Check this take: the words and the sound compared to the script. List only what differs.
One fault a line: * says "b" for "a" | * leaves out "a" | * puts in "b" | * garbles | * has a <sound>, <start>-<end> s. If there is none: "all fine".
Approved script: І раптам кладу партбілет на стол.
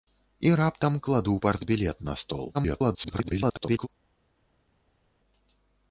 * garbles